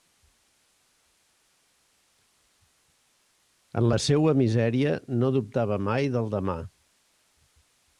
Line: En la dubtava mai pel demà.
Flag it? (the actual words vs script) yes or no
yes